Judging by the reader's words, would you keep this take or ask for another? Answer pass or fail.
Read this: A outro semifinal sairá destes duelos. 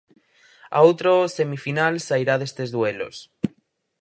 pass